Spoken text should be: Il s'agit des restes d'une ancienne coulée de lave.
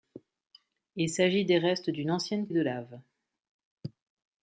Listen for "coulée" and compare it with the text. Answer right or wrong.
wrong